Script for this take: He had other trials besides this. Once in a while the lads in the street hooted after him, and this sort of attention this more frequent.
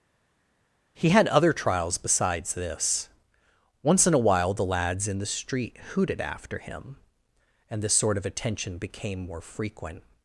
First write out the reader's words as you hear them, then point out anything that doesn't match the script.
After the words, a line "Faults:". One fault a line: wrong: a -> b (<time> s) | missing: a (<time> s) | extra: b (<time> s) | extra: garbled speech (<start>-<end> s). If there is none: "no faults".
He had other trials besides this. Once in a while the lads in the street hooted after him, and this sort of attention became more frequent.
Faults:
wrong: this -> became (8.8 s)